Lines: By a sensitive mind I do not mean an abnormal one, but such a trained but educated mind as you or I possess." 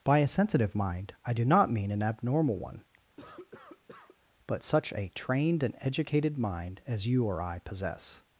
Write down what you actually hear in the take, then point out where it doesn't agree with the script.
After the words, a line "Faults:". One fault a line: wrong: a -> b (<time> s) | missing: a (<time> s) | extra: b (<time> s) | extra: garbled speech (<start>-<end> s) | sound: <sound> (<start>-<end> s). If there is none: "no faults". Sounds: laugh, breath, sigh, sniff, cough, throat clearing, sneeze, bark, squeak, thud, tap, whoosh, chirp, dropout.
By a sensitive mind I do not mean an abnormal one, but such a trained and educated mind as you or I possess."
Faults:
sound: cough (3.2-4.2 s)
wrong: but -> and (5.6 s)